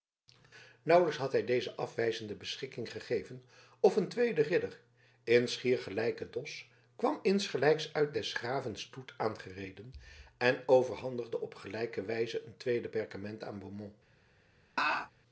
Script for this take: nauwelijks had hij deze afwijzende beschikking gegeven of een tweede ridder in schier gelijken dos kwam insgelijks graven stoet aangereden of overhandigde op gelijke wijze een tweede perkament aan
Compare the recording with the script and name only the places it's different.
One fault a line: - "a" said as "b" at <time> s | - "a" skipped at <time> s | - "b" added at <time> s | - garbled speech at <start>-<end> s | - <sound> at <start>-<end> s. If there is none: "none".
- "uit des" added at 7.9 s
- "of" said as "en" at 10.4 s
- laugh at 14.8-15.1 s